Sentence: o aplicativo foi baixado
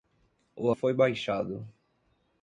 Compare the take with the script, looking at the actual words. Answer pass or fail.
fail